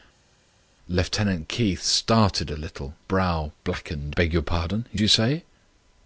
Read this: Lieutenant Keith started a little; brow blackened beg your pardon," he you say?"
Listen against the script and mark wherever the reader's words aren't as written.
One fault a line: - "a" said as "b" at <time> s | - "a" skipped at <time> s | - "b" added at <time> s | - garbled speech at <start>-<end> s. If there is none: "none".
none